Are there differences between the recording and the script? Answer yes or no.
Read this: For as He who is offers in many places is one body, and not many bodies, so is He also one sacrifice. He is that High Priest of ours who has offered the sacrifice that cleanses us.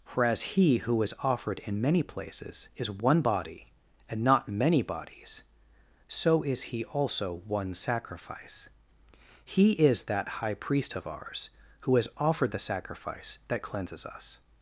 yes